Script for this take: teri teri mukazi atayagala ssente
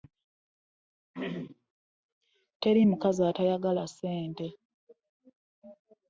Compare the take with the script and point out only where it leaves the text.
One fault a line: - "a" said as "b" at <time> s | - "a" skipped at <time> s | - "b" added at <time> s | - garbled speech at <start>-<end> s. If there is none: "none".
- "teri" skipped at 2.8 s